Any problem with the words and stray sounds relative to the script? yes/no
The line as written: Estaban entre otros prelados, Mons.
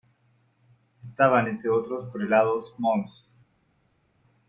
no